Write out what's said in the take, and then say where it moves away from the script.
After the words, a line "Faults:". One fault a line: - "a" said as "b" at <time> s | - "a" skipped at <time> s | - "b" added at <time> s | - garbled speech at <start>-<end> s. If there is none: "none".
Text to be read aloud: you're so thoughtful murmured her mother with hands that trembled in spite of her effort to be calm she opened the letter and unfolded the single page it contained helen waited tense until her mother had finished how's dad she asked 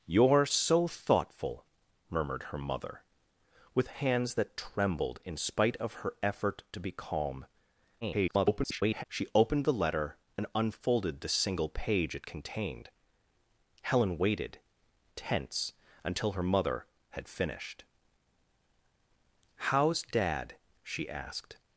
you're so thoughtful murmured her mother with hands that trembled in spite of her effort to be calm [garbled] she opened the letter and unfolded the single page it contained helen waited tense until her mother had finished how's dad she asked
Faults:
- garbled speech at 8.0-9.0 s